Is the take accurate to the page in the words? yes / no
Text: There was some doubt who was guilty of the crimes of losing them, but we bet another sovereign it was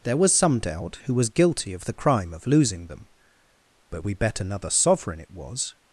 no